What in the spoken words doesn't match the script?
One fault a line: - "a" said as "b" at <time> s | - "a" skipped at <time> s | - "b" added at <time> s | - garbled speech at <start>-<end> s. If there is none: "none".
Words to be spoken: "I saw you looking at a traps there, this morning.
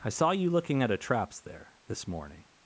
none